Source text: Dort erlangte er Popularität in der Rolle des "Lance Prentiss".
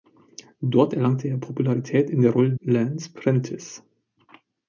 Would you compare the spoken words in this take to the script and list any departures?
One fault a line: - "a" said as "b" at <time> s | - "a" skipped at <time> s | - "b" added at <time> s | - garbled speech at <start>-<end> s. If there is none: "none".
- "des" skipped at 2.5 s